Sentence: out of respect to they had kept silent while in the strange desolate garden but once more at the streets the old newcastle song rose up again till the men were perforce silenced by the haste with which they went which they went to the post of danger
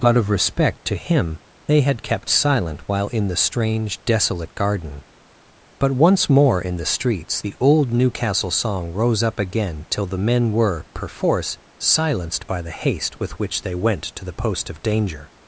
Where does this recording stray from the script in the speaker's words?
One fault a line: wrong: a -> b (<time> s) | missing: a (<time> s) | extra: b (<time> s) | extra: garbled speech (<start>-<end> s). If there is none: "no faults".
extra: him (0.9 s)
wrong: at -> in (6.6 s)
missing: which they went (14.1 s)